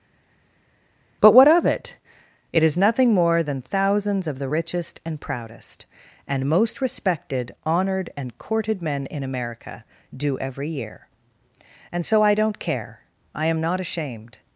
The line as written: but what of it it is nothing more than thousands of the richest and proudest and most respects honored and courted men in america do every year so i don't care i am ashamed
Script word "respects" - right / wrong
wrong